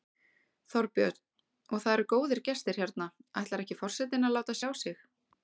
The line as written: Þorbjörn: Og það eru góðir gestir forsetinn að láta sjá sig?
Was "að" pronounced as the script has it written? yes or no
yes